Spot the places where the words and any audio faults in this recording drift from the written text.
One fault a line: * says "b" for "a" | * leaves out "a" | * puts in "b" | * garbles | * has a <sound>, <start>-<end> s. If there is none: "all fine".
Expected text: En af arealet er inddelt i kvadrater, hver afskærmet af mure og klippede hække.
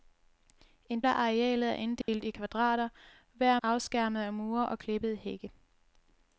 * has a dropout, 2.0-2.1 s